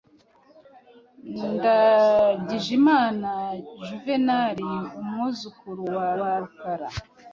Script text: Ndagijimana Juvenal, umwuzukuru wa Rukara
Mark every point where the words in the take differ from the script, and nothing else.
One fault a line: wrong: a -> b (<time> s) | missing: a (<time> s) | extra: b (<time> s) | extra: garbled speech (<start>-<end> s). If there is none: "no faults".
extra: wa (6.2 s)